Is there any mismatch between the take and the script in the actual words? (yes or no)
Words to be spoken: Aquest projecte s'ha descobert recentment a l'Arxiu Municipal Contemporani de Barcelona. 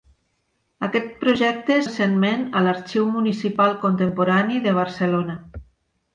yes